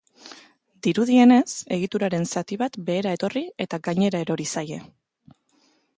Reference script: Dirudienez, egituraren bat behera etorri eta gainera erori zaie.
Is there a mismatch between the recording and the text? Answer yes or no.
yes